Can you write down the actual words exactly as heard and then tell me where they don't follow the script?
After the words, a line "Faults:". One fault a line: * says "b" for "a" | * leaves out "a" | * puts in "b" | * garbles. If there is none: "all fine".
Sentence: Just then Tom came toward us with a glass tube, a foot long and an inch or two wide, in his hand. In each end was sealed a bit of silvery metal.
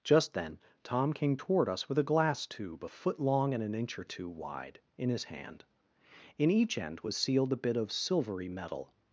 Just then Tom came toward us with a glass tube, a foot long and an inch or two wide, in his hand. In each end was sealed a bit of silvery metal.
Faults:
all fine